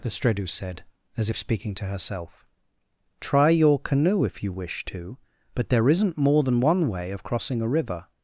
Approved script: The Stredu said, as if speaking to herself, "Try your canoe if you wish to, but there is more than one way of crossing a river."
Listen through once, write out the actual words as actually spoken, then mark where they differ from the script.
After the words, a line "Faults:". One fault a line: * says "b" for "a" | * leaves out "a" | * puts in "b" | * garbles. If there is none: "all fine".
The Stredu said, as if speaking to herself, "Try your canoe if you wish to, but there isn't more than one way of crossing a river."
Faults:
* says "isn't" for "is"